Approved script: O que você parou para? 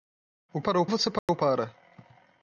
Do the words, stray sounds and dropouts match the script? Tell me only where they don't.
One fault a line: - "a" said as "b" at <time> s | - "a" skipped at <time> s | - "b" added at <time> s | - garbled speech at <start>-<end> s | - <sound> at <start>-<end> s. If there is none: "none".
- "que" said as "parou" at 0.6 s
- dropout at 1.2-1.3 s